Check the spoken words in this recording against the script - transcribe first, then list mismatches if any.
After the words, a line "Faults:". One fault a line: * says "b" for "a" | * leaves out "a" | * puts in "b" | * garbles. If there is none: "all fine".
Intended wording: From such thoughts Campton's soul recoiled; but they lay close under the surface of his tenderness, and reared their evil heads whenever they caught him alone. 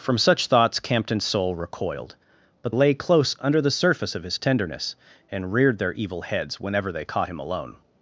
From such thoughts Campton's soul recoiled; but lay close under the surface of his tenderness, and reared their evil heads whenever they caught him alone.
Faults:
* leaves out "they"